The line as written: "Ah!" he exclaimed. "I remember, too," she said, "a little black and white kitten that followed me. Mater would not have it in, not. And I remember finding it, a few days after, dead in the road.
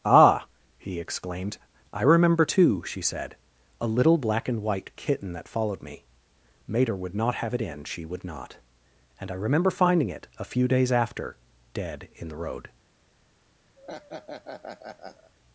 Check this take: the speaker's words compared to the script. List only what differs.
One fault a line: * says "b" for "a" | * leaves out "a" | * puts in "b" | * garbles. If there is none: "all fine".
* puts in "she would"